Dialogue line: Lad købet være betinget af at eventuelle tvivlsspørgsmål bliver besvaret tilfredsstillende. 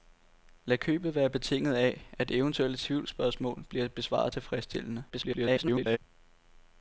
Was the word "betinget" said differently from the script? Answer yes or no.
no